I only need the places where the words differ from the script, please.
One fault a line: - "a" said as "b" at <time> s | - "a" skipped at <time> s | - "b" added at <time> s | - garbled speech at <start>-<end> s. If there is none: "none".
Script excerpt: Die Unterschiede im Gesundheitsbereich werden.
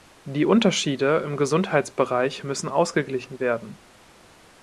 - "müssen ausgeglichen" added at 2.4 s